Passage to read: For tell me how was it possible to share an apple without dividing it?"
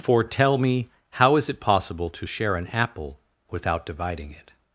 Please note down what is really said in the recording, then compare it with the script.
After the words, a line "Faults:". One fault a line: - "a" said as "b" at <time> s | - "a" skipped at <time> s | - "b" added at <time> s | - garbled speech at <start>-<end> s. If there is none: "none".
For tell me how is it possible to share an apple without dividing it?"
Faults:
- "was" said as "is" at 1.4 s